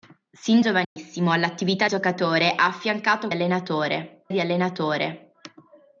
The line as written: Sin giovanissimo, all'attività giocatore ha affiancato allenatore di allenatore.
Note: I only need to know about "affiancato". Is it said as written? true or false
true